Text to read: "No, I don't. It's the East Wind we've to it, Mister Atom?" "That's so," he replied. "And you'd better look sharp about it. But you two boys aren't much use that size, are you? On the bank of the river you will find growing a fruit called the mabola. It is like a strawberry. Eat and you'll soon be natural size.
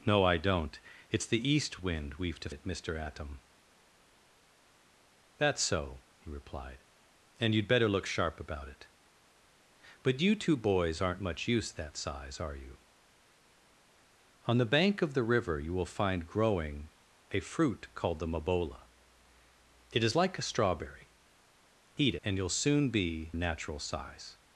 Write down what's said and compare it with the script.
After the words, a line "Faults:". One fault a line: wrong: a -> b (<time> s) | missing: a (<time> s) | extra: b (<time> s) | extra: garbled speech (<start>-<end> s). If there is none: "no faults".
"No, I don't. It's the East Wind we've to it, Mister Atom?" "That's so," he replied. "And you'd better look sharp about it. But you two boys aren't much use that size, are you? On the bank of the river you will find growing a fruit called the mabola. It is like a strawberry. Eat and you'll soon be natural size.
Faults:
no faults